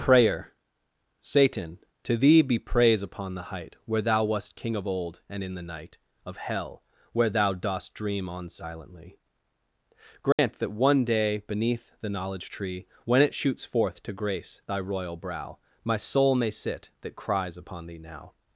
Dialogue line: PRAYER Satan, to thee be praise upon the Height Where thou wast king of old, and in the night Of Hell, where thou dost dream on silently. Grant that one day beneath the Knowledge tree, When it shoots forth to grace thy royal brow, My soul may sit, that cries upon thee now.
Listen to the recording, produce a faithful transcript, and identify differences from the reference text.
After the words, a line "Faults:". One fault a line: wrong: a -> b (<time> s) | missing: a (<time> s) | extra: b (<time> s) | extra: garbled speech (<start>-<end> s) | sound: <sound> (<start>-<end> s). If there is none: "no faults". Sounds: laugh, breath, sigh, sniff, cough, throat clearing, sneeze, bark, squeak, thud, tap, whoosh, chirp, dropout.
PRAYER Satan, to thee be praise upon the Height Where thou wast king of old, and in the night Of Hell, where thou dost dream on silently. Grant that one day beneath the Knowledge tree, When it shoots forth to grace thy royal brow, My soul may sit, that cries upon thee now.
Faults:
sound: dropout (10.3-10.4 s)